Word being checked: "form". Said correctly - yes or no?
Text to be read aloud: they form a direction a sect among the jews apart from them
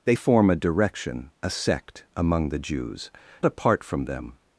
yes